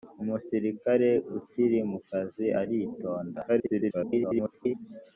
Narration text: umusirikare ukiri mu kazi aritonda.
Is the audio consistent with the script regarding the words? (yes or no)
no